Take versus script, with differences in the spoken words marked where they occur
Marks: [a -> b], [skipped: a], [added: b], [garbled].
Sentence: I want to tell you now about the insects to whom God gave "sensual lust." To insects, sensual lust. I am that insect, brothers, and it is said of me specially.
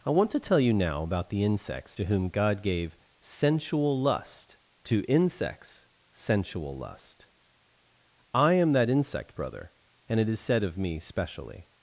I want to tell you now about the insects to whom God gave "sensual lust." To insects, sensual lust. I am that insect, [brothers, -> brother] and it is said of me specially.